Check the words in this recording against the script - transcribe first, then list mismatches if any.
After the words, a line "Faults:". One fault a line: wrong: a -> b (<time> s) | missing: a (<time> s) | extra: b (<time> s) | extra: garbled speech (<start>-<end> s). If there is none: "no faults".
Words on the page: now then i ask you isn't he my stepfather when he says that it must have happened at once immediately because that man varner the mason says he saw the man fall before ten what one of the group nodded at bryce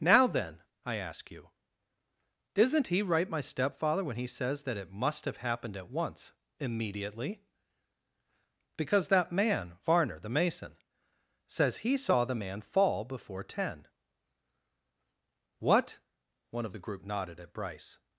now then i ask you isn't he right my stepfather when he says that it must have happened at once immediately because that man varner the mason says he saw the man fall before ten what one of the group nodded at bryce
Faults:
extra: right (3.0 s)